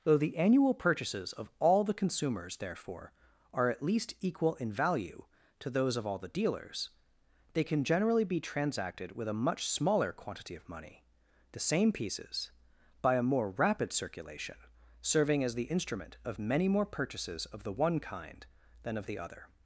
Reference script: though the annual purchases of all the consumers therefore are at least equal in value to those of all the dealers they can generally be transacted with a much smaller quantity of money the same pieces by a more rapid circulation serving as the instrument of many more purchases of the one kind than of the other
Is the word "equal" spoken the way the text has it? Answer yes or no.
yes